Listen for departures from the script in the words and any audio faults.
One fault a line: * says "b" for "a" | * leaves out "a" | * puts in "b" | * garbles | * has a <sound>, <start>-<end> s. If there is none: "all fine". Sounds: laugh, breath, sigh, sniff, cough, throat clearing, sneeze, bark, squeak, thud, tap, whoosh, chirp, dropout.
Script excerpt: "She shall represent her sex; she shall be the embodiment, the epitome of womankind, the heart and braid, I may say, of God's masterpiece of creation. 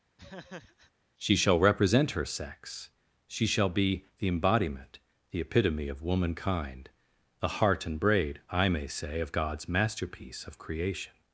* has a laugh, 0.2-0.9 s